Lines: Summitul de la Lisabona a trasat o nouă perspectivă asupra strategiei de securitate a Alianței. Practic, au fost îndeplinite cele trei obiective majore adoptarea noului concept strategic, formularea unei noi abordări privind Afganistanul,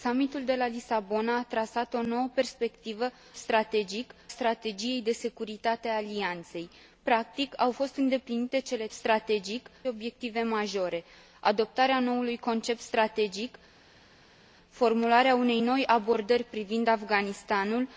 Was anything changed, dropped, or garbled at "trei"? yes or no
yes